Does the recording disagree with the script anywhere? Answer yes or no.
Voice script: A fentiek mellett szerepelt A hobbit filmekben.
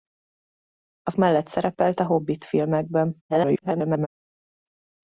yes